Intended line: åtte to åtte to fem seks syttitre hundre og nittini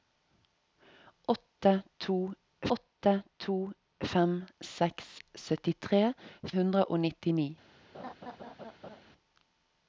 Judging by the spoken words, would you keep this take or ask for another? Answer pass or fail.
pass